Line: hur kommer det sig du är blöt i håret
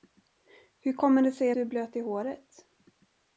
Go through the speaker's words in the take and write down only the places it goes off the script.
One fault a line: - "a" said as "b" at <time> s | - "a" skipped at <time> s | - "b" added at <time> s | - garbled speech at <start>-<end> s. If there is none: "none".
none